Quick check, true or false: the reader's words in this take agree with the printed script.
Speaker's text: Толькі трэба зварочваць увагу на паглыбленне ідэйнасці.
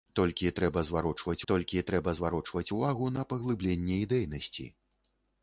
false